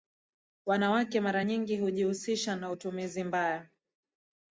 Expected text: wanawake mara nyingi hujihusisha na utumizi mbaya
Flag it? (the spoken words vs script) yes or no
no